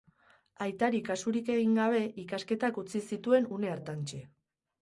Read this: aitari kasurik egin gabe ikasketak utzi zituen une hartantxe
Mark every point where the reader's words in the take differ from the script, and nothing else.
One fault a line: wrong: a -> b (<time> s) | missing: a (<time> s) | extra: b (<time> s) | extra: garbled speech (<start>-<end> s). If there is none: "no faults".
no faults